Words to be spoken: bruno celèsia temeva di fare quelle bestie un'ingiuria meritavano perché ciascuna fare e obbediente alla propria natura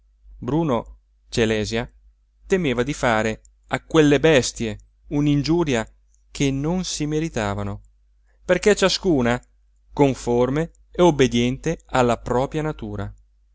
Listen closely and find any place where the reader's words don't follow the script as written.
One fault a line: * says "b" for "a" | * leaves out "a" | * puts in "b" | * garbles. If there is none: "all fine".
* puts in "a"
* puts in "che non si"
* says "conforme" for "fare"